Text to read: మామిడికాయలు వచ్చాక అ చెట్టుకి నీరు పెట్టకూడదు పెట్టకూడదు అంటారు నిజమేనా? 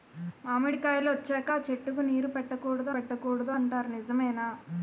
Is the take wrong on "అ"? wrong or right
right